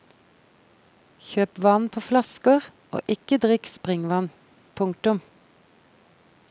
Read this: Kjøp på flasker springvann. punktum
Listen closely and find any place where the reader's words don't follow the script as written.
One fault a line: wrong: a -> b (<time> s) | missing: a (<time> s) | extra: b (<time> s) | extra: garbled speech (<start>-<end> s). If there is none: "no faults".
extra: vann (1.6 s)
extra: og ikke drikk (3.0 s)